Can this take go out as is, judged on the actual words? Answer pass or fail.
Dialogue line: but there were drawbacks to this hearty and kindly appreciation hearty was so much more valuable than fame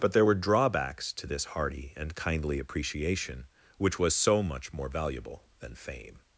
fail